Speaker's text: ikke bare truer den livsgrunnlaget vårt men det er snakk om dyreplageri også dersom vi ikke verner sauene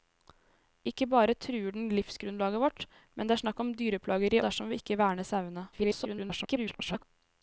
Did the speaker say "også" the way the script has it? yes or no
no